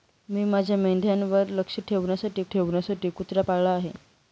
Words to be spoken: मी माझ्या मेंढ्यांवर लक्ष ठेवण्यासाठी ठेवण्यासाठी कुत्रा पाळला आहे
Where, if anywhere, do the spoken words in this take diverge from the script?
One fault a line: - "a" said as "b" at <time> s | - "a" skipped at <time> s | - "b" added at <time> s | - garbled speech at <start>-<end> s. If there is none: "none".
none